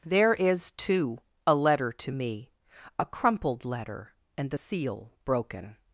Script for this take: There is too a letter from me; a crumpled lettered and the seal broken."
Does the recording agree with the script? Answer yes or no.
no